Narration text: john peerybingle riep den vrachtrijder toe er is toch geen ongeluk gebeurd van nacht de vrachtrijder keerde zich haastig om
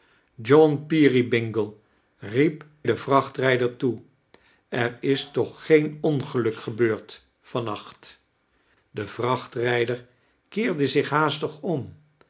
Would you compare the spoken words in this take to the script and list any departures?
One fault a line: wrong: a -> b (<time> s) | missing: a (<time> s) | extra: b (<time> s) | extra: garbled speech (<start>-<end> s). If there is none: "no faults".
no faults